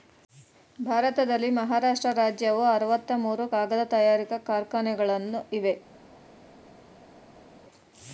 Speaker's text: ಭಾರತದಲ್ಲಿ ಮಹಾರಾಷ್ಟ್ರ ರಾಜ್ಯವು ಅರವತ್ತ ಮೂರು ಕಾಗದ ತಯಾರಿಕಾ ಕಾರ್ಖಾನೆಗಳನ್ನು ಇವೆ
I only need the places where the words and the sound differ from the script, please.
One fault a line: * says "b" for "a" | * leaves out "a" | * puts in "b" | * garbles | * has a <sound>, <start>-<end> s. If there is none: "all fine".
all fine